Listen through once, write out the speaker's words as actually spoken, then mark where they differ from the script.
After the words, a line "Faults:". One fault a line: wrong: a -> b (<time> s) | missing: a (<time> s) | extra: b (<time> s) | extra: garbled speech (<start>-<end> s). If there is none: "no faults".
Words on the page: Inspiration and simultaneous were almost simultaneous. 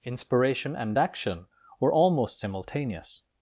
Inspiration and action were almost simultaneous.
Faults:
wrong: simultaneous -> action (1.0 s)